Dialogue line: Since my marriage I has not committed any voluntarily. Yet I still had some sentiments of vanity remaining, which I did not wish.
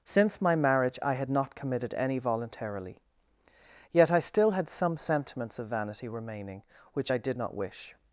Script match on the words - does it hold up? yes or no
no